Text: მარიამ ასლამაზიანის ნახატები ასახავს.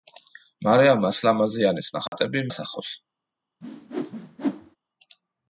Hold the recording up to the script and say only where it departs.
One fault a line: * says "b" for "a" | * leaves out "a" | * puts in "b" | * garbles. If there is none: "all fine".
all fine